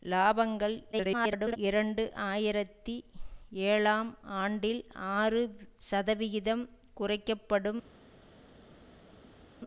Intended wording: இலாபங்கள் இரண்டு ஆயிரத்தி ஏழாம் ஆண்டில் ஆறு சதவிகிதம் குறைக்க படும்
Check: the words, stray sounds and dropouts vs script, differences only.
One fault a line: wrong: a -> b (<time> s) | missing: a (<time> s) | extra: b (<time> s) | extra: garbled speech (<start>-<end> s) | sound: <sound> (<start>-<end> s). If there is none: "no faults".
extra: garbled speech (0.9-1.6 s)